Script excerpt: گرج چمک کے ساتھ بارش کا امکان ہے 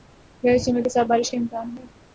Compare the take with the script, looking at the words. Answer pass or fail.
pass